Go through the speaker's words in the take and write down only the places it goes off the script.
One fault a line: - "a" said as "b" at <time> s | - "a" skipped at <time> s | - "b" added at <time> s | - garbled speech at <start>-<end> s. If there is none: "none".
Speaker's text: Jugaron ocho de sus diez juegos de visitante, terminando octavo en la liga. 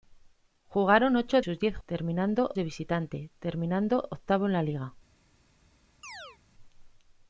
- "de" skipped at 1.4 s
- "juegos" said as "terminando" at 1.8 s